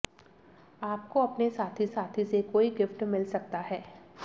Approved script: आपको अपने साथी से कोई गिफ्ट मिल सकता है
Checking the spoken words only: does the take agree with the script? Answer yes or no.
no